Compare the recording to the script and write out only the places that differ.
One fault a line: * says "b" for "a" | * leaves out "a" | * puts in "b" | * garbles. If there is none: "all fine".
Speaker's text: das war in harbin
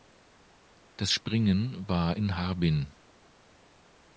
* puts in "springen"